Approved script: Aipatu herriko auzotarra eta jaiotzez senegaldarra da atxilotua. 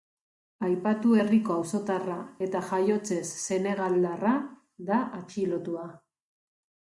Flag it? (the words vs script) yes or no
no